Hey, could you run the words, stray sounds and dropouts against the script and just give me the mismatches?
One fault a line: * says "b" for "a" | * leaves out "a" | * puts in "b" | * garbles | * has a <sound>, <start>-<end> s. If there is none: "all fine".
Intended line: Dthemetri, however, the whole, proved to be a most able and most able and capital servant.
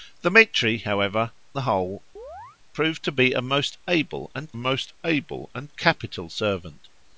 * has a chirp, 2.2-2.6 s